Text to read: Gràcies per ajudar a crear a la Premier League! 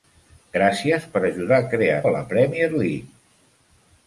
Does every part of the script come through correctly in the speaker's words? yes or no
yes